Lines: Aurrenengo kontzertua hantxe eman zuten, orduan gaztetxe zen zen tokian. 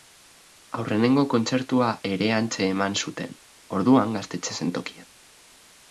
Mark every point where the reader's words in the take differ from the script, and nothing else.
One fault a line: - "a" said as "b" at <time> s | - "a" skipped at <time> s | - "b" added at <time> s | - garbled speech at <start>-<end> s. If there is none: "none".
- "ere" added at 2.1 s
- "zen" skipped at 4.7 s